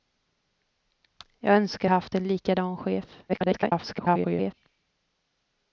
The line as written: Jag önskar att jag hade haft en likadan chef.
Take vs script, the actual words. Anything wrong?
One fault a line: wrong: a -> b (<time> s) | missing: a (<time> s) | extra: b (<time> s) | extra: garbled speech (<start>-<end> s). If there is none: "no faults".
missing: att jag hade (1.9 s)
extra: garbled speech (3.3-4.5 s)